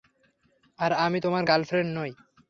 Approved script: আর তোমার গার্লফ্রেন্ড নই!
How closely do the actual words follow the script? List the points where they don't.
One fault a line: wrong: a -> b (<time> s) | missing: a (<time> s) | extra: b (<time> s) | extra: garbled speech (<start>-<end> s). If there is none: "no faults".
extra: আমি (1.1 s)